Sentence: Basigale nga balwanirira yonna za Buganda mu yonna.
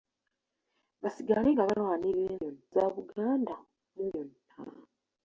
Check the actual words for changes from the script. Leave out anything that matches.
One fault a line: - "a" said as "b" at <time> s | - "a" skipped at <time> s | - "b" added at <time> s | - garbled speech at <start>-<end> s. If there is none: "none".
none